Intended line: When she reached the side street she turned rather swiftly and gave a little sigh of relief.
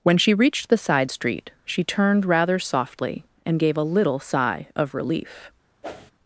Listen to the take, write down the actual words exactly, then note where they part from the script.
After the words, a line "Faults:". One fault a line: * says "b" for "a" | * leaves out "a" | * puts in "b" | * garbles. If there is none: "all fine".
When she reached the side street she turned rather softly and gave a little sigh of relief.
Faults:
* says "softly" for "swiftly"